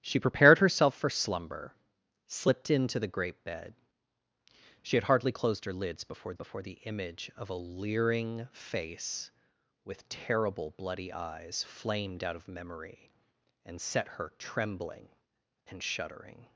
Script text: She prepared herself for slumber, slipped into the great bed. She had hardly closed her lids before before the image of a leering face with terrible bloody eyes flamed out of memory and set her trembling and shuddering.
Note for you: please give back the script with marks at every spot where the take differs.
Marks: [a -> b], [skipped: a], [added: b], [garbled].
She prepared herself for slumber, slipped into the great bed. She had hardly closed her lids before before the image of a leering face with terrible bloody eyes flamed out of memory and set her trembling and shuddering.